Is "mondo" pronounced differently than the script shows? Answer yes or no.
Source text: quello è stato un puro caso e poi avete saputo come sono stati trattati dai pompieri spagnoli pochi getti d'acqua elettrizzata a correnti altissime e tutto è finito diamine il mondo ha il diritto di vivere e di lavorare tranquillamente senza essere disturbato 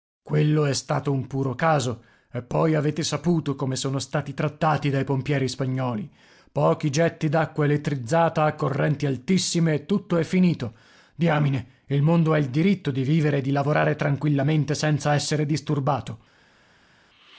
no